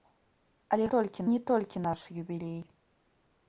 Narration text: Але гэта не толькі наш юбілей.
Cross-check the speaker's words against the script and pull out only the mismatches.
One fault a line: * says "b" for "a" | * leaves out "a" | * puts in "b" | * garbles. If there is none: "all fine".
* says "толькі" for "гэта"